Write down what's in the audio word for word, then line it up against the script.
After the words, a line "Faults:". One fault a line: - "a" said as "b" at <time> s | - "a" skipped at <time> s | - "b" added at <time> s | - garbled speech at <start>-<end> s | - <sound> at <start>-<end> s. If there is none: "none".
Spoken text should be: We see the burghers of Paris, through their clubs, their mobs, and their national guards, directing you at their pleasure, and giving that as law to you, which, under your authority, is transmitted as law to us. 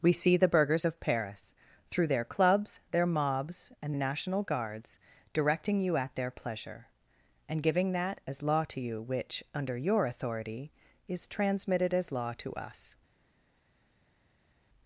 We see the burghers of Paris, through their clubs, their mobs, and national guards, directing you at their pleasure, and giving that as law to you, which, under your authority, is transmitted as law to us.
Faults:
- "their" skipped at 3.9 s